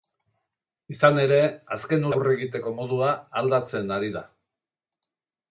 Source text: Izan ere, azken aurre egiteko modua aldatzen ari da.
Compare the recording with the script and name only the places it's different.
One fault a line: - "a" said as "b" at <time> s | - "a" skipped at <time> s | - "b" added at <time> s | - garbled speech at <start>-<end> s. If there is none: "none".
none